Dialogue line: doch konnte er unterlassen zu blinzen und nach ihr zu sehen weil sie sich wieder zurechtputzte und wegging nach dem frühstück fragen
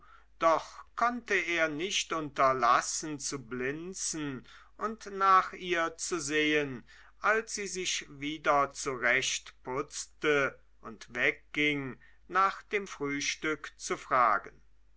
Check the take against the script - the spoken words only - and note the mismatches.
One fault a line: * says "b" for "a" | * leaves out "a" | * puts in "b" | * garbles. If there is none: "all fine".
* puts in "nicht"
* says "als" for "weil"
* puts in "zu"